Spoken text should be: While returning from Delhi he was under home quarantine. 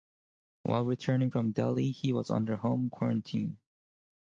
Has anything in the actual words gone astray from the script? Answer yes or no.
no